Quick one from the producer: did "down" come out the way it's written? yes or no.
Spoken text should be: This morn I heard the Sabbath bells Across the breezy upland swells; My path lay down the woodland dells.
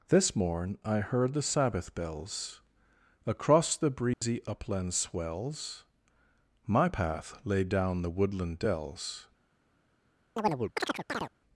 yes